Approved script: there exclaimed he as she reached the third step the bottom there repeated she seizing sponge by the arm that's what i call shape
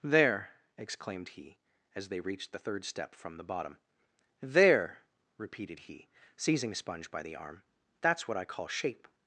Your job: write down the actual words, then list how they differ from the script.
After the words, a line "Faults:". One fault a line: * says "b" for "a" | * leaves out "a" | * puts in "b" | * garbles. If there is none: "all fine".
there exclaimed he as they reached the third step from the bottom there repeated he seizing sponge by the arm that's what i call shape
Faults:
* says "they" for "she"
* puts in "from"
* says "he" for "she"